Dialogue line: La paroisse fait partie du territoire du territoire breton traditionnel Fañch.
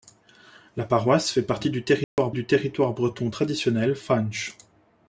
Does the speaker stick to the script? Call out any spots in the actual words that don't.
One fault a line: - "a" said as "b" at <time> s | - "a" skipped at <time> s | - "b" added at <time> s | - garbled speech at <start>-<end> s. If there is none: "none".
none